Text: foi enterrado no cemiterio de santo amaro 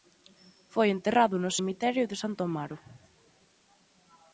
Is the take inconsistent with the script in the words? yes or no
no